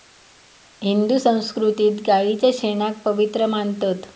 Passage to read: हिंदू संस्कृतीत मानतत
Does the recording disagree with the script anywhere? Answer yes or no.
yes